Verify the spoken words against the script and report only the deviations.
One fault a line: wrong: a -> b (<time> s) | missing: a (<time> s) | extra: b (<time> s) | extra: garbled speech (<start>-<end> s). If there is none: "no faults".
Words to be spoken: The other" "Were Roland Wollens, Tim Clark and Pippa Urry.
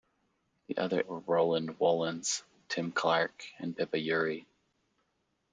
no faults